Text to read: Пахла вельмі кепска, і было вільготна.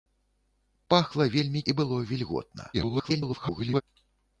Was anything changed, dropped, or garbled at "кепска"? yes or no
yes